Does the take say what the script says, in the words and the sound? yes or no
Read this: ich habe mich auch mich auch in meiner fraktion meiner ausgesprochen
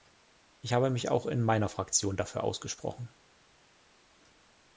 no